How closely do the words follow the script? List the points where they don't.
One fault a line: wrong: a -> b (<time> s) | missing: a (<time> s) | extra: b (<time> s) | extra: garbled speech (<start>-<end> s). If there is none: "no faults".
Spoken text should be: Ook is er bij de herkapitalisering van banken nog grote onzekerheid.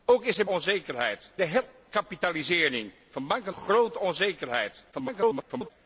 wrong: bij -> onzekerheid (0.4 s)
missing: nog (3.5 s)
extra: garbled speech (4.9-5.7 s)